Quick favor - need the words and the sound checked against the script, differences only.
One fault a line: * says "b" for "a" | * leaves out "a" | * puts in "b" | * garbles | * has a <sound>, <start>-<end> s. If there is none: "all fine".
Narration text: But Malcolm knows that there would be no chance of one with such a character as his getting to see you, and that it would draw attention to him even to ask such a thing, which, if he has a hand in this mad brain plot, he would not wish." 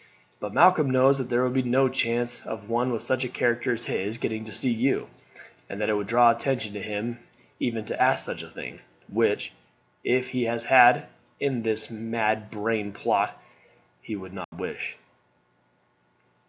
* has a dropout, 14.4-14.5 s